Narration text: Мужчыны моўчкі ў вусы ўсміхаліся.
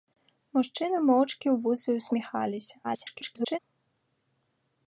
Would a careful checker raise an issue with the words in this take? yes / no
yes